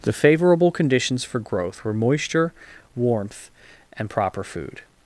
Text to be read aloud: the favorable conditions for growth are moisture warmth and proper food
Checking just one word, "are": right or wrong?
wrong